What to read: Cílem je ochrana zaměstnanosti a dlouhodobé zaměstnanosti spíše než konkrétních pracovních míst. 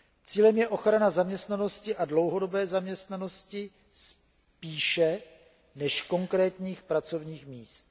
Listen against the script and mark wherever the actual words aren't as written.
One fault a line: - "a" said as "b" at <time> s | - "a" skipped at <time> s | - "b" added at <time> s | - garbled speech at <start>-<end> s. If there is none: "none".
none